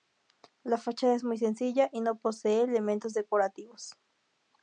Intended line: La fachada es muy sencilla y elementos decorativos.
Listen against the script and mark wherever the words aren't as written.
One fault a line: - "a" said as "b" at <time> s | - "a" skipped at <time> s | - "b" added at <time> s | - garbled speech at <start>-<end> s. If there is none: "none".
- "no posee" added at 2.0 s